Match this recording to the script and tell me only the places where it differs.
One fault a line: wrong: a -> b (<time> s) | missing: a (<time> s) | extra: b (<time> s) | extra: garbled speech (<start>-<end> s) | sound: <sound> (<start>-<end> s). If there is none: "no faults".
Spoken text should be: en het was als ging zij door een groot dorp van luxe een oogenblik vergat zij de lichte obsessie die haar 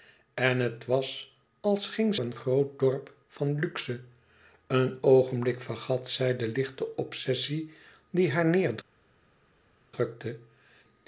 missing: zij door (2.1 s)